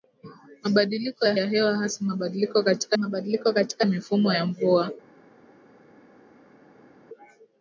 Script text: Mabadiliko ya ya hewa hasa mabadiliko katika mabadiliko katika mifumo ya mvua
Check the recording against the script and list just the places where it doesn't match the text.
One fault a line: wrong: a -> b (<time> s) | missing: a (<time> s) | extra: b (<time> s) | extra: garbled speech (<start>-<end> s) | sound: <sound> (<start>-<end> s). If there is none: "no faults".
no faults